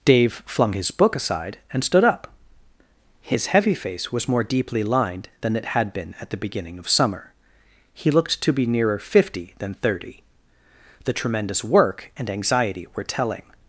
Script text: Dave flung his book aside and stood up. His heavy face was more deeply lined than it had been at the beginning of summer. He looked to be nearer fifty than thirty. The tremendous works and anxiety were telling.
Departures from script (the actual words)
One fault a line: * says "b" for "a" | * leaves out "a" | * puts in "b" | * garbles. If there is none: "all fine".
* says "work" for "works"